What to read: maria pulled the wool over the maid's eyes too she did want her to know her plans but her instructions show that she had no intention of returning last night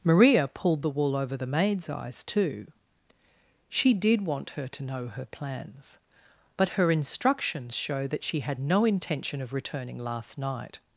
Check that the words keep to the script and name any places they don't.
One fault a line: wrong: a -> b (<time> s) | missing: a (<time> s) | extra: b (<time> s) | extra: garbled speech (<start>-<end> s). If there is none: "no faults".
no faults